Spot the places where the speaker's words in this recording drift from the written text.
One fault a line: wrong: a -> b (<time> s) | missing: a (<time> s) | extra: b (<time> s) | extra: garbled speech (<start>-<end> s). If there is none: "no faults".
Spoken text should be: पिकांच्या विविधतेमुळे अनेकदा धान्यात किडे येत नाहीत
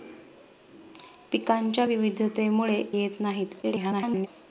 missing: अनेकदा धान्यात किडे (2.8 s)
extra: garbled speech (3.6-4.3 s)